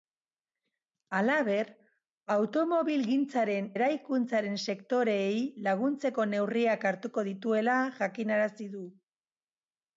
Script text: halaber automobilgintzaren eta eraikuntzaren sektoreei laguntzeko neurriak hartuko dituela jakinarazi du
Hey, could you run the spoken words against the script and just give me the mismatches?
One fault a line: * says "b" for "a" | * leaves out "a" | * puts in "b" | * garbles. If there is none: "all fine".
* leaves out "eta"